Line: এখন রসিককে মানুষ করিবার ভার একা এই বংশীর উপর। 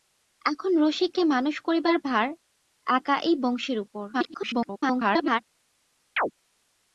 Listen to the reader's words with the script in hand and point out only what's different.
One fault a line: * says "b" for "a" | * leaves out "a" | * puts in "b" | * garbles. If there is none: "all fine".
* garbles